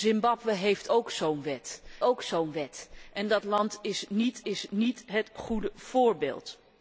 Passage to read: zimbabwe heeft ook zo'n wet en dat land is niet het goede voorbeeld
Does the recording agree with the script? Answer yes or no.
no